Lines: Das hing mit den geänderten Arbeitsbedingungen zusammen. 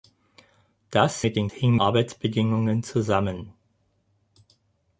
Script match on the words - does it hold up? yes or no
no